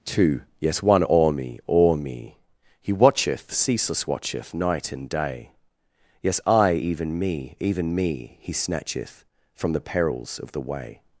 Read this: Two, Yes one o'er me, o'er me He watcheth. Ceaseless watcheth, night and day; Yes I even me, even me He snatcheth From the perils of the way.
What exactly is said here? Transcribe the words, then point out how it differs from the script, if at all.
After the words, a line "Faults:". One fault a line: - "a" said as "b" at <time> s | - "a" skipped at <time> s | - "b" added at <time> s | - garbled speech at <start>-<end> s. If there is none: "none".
Two, Yes one o'er me, o'er me He watcheth. Ceaseless watcheth, night and day; Yes I even me, even me He snatcheth From the perils of the way.
Faults:
none